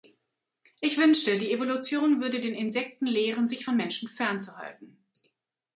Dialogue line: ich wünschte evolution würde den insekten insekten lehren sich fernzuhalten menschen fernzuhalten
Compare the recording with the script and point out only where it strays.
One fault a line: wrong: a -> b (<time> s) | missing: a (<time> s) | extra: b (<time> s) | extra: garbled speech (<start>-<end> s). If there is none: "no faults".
extra: die (1.4 s)
missing: insekten (3.0 s)
wrong: fernzuhalten -> von (3.6 s)